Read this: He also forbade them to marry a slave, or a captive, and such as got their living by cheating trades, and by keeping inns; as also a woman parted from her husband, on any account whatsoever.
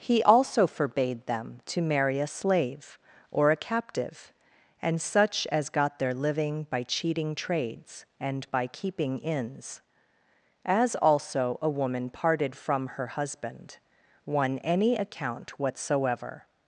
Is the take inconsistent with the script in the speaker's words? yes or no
yes